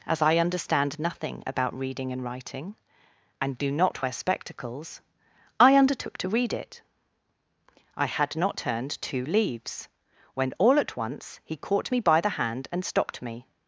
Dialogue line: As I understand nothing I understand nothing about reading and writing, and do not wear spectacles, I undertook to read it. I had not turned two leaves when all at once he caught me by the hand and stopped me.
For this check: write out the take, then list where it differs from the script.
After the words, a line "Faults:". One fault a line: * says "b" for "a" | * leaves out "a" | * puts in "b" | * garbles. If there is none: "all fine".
As I understand nothing about reading and writing, and do not wear spectacles, I undertook to read it. I had not turned two leaves when all at once he caught me by the hand and stopped me.
Faults:
* leaves out "I understand nothing"